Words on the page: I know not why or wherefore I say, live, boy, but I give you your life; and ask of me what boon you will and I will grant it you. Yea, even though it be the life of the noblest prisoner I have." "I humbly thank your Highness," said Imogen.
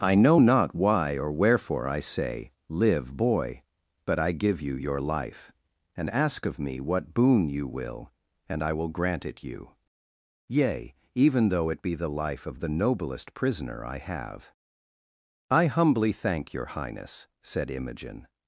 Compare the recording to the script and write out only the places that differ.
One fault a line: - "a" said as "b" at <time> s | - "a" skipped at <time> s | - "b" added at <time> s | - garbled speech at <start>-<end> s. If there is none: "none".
none